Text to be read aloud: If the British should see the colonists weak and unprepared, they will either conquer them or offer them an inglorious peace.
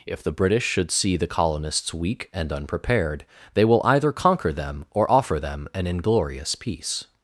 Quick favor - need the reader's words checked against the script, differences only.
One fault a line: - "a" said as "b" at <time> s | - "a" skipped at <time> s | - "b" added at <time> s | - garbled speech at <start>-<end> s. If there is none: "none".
none